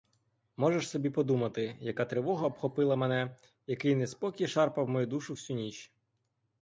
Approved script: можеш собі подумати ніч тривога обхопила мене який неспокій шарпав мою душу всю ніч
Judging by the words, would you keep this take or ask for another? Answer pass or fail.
fail